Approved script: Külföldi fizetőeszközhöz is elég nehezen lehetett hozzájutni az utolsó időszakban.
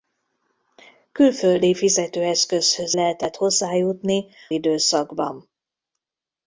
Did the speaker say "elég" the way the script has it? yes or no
no